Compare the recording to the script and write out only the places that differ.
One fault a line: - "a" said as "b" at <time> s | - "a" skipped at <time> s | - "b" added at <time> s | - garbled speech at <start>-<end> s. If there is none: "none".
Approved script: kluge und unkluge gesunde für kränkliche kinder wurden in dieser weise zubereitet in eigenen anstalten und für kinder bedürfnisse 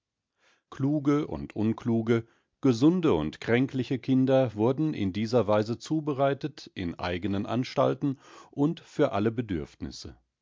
- "für" said as "und" at 3.1 s
- "kinder" said as "alle" at 9.1 s